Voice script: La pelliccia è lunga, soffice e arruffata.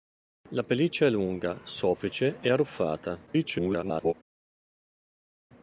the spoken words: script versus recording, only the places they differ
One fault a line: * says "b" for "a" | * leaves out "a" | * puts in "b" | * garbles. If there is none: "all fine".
* garbles